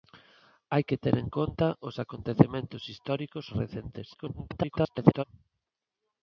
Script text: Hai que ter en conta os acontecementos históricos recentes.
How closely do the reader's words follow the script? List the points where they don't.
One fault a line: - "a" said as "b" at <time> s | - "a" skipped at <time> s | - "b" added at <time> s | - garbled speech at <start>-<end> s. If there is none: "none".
- garbled speech at 4.1-5.2 s